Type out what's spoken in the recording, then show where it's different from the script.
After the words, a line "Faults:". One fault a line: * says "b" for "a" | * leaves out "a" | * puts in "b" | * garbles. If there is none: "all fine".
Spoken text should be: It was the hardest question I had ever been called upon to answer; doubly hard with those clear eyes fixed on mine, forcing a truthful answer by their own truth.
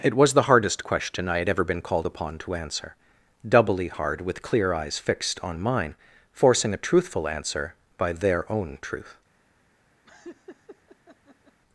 It was the hardest question I had ever been called upon to answer; doubly hard with clear eyes fixed on mine, forcing a truthful answer by their own truth.
Faults:
* leaves out "those"